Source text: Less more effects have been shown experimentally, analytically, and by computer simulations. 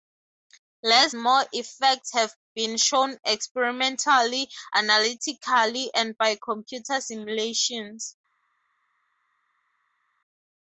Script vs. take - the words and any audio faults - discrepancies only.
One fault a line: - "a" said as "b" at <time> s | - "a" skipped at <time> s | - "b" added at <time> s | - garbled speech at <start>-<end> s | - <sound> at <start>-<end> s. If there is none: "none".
none